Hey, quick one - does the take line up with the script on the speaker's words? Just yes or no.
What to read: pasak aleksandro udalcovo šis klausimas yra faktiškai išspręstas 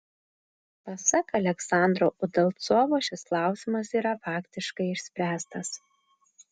yes